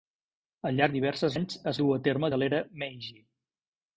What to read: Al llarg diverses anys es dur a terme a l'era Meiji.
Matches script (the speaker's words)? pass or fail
pass